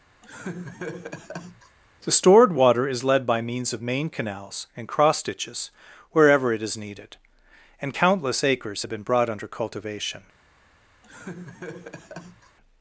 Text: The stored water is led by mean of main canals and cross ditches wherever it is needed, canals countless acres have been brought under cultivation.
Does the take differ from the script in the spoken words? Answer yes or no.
yes